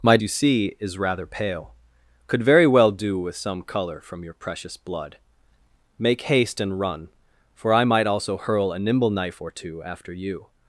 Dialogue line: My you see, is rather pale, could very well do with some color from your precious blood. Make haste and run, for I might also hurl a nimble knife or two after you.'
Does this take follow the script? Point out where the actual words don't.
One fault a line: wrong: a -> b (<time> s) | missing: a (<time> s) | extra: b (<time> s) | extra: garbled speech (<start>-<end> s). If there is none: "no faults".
no faults